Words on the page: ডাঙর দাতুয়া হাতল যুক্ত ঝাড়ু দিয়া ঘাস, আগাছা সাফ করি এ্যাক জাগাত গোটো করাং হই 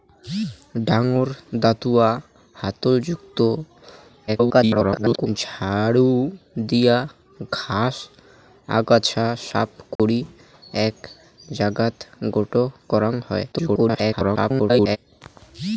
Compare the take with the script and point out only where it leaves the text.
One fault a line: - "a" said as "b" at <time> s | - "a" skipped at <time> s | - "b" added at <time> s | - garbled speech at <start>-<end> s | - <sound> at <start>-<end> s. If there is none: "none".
- garbled speech at 4.3-5.3 s
- dropout at 10.0-10.0 s
- garbled speech at 13.5-15.0 s